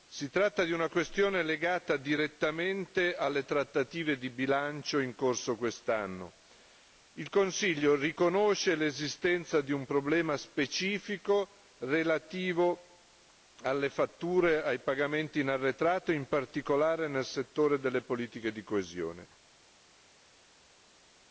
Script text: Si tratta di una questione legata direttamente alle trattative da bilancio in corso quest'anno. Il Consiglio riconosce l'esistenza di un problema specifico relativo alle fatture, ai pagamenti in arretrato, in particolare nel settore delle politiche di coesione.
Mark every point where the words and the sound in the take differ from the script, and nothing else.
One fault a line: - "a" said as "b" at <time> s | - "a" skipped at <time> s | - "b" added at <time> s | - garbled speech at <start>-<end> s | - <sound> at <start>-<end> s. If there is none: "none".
- "da" said as "di" at 4.2 s